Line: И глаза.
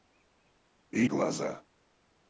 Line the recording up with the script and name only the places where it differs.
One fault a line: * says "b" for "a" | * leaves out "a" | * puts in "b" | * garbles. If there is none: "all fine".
all fine